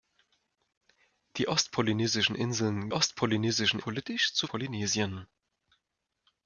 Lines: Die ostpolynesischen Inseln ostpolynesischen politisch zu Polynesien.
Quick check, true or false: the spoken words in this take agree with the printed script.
true